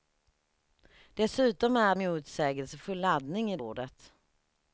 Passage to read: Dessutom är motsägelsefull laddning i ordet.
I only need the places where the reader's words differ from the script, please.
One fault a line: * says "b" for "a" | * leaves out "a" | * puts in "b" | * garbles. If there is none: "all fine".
all fine